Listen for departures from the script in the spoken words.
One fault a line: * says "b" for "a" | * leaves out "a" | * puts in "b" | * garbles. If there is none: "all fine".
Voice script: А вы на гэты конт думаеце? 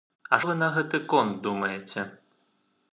all fine